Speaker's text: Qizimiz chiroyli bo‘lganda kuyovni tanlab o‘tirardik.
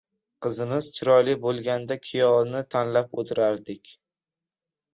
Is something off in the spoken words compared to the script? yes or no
no